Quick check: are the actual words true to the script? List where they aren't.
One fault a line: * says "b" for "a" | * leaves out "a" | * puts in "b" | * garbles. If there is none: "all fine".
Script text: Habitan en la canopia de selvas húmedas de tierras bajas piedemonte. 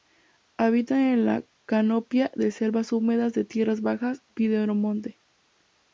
all fine